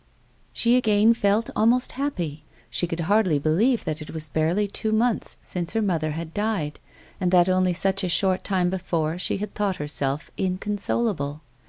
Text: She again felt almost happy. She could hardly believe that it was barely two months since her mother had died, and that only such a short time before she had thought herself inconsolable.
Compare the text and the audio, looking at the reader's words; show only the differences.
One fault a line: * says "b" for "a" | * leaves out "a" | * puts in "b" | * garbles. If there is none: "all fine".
all fine